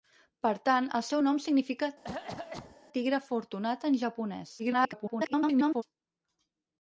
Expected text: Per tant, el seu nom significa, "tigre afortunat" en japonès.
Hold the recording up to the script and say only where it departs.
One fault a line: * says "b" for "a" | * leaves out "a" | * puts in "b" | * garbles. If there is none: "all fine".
* garbles